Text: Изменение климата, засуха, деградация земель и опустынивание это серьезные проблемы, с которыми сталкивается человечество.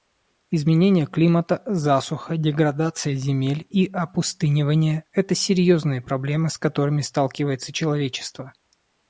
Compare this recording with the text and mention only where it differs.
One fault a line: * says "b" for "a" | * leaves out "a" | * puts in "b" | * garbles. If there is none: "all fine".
all fine